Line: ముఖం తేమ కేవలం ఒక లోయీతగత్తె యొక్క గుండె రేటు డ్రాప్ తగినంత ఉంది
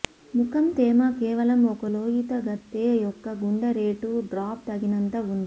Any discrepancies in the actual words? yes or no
no